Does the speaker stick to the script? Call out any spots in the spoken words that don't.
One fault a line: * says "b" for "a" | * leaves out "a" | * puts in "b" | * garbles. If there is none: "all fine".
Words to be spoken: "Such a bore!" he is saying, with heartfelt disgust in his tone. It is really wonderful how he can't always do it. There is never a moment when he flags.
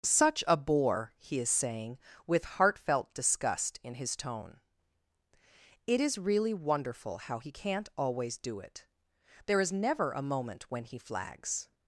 all fine